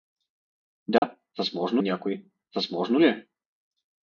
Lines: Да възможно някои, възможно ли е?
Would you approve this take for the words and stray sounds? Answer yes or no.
no